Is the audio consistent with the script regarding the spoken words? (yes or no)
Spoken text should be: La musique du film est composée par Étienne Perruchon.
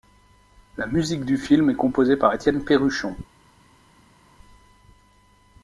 yes